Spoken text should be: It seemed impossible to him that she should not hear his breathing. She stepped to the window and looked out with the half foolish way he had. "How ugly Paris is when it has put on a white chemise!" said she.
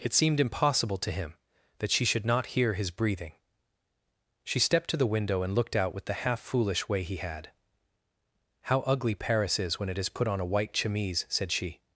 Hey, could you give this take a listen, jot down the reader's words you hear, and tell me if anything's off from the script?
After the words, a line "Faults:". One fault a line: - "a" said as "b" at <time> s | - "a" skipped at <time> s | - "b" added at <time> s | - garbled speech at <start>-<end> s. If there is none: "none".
It seemed impossible to him that she should not hear his breathing. She stepped to the window and looked out with the half foolish way he had. "How ugly Paris is when it has put on a white chemise!" said she.
Faults:
none